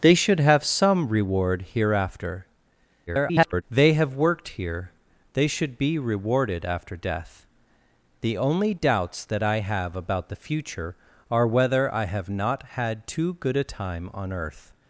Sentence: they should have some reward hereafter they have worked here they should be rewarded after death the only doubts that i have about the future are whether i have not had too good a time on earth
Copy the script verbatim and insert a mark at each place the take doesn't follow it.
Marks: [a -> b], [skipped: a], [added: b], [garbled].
they should have some reward hereafter [garbled] they have worked here they should be rewarded after death the only doubts that i have about the future are whether i have not had too good a time on earth